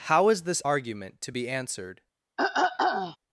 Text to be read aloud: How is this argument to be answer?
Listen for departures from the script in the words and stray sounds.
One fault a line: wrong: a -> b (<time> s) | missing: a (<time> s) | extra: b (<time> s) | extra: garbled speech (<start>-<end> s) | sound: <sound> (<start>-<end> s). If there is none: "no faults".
wrong: answer -> answered (1.5 s)
sound: throat clearing (2.4-3.2 s)